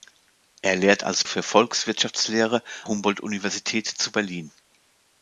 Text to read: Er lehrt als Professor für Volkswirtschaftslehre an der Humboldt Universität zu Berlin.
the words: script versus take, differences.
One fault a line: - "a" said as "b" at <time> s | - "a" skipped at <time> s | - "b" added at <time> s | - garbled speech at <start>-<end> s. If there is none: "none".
- "Professor" skipped at 1.2 s
- "an der" skipped at 2.6 s